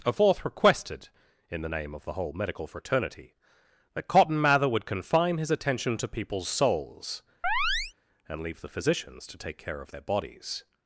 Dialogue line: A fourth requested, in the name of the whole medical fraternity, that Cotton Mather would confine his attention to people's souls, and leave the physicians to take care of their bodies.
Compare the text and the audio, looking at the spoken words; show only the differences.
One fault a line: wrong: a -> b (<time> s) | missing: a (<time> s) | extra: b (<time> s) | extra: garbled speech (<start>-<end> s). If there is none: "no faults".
no faults